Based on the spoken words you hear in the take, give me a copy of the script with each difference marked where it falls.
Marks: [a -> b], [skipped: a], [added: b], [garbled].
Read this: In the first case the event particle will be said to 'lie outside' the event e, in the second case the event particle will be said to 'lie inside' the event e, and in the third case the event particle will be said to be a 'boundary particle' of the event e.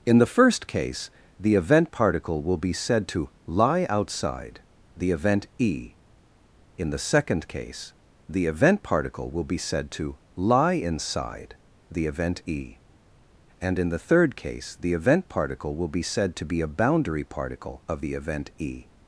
In the first case the event particle will be said to 'lie outside' the event e, in the second case the event particle will be said to 'lie inside' the event e, and in the third case the event particle will be said to be a 'boundary particle' of the event e.